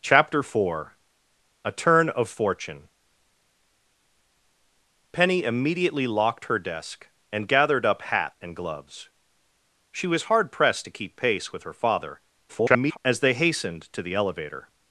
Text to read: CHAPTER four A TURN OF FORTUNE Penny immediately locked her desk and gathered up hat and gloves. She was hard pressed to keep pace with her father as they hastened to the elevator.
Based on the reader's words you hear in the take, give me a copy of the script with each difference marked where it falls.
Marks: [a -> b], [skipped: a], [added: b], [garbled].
CHAPTER four A TURN OF FORTUNE Penny immediately locked her desk and gathered up hat and gloves. She was hard pressed to keep pace with her father [garbled] as they hastened to the elevator.